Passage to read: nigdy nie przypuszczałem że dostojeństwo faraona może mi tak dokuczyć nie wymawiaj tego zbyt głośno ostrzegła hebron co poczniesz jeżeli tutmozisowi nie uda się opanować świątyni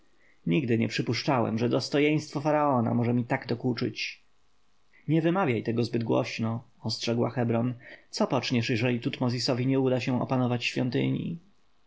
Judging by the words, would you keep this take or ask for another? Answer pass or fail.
pass